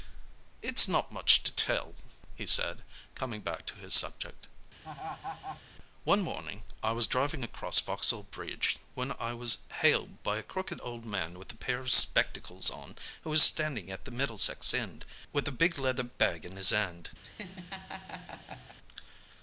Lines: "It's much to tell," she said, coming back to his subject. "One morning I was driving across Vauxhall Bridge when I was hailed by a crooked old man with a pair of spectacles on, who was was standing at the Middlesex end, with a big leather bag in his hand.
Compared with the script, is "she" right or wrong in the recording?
wrong